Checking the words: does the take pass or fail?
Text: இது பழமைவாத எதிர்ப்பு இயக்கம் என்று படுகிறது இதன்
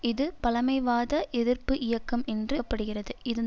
pass